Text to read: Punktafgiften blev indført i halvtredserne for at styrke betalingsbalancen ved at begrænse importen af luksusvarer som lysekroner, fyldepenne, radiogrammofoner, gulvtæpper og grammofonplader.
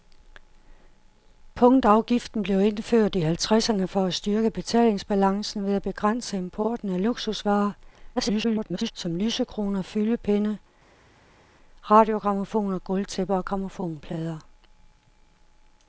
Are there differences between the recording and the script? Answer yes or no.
yes